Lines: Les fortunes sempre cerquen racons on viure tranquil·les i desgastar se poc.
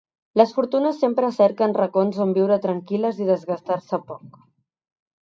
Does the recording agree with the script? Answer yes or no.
yes